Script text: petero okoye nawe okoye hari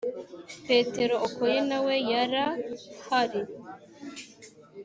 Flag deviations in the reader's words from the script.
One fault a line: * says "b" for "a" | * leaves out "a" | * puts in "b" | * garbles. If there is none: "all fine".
* says "yara" for "okoye"